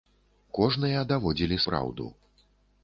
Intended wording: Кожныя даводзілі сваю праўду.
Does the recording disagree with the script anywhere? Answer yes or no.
yes